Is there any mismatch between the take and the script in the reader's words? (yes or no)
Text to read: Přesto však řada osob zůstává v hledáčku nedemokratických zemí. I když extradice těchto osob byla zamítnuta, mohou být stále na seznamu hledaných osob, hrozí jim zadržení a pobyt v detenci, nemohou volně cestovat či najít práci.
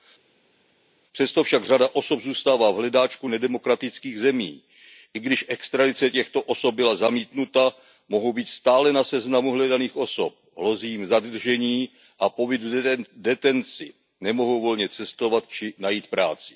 no